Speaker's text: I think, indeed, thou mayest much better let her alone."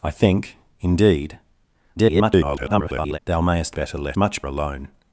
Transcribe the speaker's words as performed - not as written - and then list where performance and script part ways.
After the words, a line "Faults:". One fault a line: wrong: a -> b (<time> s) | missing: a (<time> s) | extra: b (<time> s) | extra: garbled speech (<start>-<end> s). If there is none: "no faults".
I think, indeed, [garbled] thou mayest better let much alone."
Faults:
extra: garbled speech (2.0-3.2 s)
missing: much (3.8 s)
wrong: her -> much (4.1 s)